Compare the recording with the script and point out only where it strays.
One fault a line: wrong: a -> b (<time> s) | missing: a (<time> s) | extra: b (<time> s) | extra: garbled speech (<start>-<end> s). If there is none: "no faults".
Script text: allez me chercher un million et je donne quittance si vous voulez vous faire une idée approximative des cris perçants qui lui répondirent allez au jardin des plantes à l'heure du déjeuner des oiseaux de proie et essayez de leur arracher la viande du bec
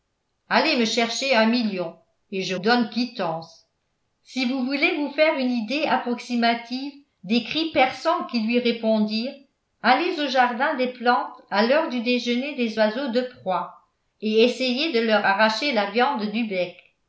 no faults